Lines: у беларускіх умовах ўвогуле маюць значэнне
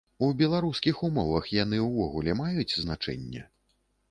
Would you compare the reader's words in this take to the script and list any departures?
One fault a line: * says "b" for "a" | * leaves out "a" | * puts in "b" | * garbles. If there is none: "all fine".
* puts in "яны"